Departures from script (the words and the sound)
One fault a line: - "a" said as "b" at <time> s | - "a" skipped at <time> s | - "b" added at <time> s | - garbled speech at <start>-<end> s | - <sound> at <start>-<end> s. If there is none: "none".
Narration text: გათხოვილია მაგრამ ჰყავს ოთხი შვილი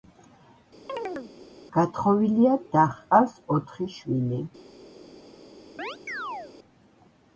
- chirp at 0.9-1.3 s
- "მაგრამ" said as "და" at 2.7 s
- chirp at 5.8-6.5 s